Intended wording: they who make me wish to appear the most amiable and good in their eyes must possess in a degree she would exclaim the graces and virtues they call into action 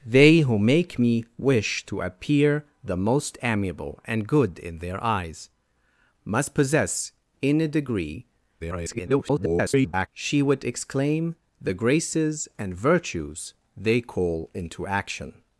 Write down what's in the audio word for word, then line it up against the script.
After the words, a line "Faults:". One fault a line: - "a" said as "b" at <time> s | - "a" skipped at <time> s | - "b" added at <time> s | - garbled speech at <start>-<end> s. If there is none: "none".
they who make me wish to appear the most amiable and good in their eyes must possess in a degree [garbled] she would exclaim the graces and virtues they call into action
Faults:
- garbled speech at 8.6-10.1 s